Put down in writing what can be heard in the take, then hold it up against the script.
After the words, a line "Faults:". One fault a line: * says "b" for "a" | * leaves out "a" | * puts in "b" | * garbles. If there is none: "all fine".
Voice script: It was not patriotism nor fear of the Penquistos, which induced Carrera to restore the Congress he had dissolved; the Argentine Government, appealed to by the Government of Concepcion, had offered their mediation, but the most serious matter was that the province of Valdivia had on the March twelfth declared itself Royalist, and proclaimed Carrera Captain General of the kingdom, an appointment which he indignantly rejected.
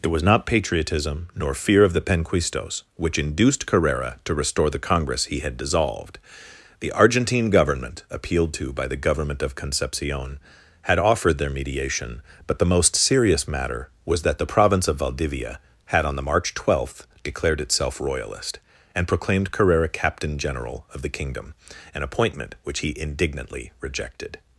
It was not patriotism nor fear of the Penquistos, which induced Carrera to restore the Congress he had dissolved; the Argentine Government, appealed to by the Government of Concepcion, had offered their mediation, but the most serious matter was that the province of Valdivia had on the March twelfth declared itself Royalist, and proclaimed Carrera Captain General of the kingdom, an appointment which he indignantly rejected.
Faults:
all fine